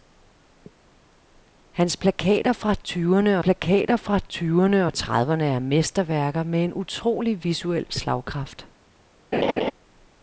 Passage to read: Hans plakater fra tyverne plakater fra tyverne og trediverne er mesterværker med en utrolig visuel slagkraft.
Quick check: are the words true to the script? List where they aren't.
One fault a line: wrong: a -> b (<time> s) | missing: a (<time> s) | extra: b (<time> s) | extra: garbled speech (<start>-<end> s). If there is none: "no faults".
no faults